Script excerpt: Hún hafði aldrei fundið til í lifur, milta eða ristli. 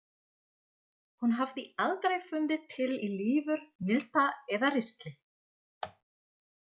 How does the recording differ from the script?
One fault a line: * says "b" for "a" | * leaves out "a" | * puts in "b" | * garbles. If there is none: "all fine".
all fine